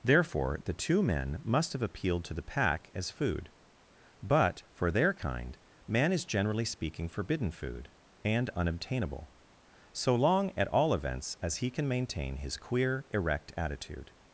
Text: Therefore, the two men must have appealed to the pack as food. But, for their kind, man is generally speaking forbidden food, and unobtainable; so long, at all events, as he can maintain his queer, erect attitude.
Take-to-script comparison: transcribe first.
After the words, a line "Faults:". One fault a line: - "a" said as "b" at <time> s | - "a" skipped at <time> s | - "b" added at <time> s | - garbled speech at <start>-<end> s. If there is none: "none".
Therefore, the two men must have appealed to the pack as food. But, for their kind, man is generally speaking forbidden food, and unobtainable; so long, at all events, as he can maintain his queer, erect attitude.
Faults:
none